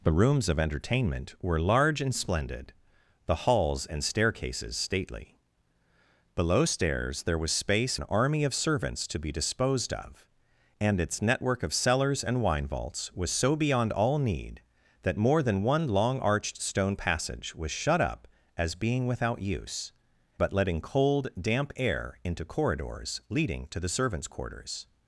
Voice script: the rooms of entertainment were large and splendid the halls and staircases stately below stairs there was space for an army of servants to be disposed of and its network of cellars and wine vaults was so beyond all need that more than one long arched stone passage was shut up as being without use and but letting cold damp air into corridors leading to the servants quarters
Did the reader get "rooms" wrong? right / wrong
right